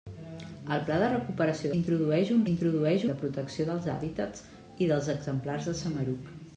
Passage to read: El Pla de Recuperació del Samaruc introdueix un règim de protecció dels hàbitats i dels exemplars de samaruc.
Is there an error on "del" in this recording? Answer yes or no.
yes